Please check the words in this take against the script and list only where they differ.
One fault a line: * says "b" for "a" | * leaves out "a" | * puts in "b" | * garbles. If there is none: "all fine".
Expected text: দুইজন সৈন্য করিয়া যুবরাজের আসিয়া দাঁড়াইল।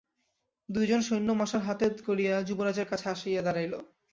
* puts in "মশাল হাতে"
* puts in "কাছে"